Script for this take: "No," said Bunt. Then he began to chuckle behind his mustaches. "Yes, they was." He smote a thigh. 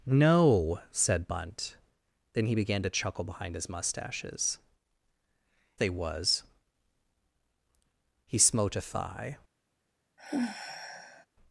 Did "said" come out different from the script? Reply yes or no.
no